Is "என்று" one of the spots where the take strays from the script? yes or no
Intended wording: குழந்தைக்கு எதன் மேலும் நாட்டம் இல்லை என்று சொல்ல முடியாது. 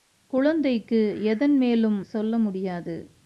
yes